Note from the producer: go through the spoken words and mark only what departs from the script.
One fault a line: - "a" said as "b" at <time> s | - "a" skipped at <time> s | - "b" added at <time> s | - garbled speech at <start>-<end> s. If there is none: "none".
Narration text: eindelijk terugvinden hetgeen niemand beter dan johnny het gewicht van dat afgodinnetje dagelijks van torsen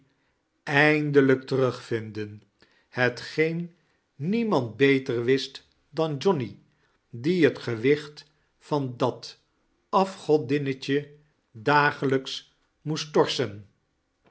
- "wist" added at 5.2 s
- "die" added at 7.1 s
- "van" said as "moest" at 12.8 s